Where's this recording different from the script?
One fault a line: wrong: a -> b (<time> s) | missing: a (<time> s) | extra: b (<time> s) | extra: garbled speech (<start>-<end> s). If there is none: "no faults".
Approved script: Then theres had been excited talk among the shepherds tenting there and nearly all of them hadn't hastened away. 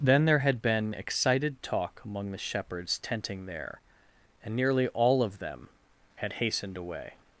wrong: theres -> there (0.2 s)
wrong: hadn't -> had (6.2 s)